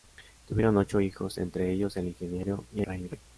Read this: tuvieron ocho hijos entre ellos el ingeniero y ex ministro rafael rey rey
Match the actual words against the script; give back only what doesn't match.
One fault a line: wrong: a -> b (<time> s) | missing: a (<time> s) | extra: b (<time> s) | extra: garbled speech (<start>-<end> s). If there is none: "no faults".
missing: ex ministro rafael (2.8 s)